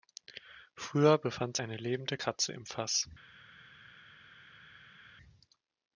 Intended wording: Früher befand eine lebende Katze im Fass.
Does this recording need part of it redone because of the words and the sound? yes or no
no